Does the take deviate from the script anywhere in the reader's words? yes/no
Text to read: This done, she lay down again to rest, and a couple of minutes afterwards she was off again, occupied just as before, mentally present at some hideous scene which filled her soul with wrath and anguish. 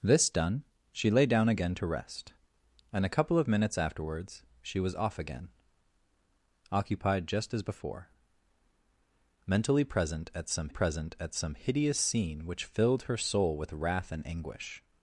yes